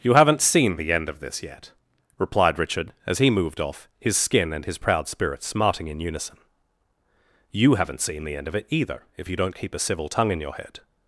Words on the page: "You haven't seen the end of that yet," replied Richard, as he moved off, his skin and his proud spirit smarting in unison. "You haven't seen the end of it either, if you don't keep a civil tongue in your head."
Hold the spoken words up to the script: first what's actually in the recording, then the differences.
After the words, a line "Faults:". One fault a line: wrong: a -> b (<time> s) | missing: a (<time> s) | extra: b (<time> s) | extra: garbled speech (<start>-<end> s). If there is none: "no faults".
"You haven't seen the end of this yet," replied Richard, as he moved off, his skin and his proud spirit smarting in unison. "You haven't seen the end of it either, if you don't keep a civil tongue in your head."
Faults:
wrong: that -> this (1.2 s)